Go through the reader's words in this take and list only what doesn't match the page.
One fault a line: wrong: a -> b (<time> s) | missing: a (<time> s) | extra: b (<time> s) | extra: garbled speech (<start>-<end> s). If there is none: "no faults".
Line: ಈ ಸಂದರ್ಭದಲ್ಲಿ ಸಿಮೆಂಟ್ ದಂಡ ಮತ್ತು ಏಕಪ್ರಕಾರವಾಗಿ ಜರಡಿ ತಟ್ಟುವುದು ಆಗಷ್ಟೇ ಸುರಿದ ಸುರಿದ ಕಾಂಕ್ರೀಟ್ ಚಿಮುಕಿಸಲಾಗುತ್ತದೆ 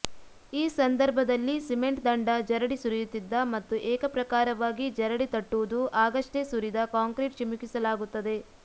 extra: ಜರಡಿ ಸುರಿಯುತ್ತಿದ್ದ (2.5 s)
missing: ಸುರಿದ (6.9 s)